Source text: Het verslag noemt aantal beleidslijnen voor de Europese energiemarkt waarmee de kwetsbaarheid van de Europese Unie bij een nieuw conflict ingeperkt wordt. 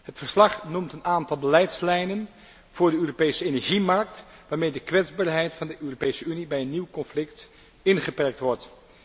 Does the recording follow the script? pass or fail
fail